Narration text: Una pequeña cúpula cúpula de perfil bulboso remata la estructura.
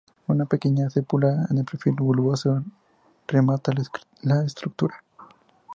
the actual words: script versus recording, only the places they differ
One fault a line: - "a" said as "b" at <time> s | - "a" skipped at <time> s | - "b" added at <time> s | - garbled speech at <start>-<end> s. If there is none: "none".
- "cúpula" skipped at 1.4 s